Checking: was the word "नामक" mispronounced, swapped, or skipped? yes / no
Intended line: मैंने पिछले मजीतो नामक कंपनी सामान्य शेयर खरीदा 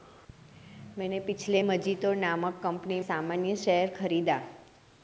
no